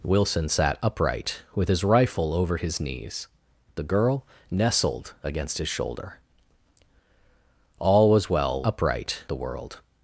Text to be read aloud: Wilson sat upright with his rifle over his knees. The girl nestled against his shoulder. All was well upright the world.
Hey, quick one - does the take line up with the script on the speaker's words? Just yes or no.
yes